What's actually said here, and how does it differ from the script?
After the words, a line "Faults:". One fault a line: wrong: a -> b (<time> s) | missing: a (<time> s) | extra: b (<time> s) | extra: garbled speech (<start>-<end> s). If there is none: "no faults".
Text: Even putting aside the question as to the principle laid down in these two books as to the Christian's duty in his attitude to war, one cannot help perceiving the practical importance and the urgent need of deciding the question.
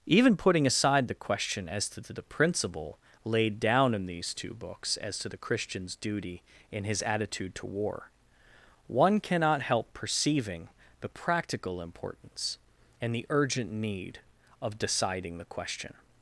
Even putting aside the question as to to the principle laid down in these two books as to the Christian's duty in his attitude to war, one cannot help perceiving the practical importance and the urgent need of deciding the question.
Faults:
extra: to (2.0 s)